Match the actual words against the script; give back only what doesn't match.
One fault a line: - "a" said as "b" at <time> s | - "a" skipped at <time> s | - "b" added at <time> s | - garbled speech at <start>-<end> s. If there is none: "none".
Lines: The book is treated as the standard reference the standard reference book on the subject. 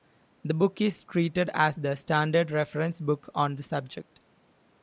- "the standard reference" skipped at 3.0 s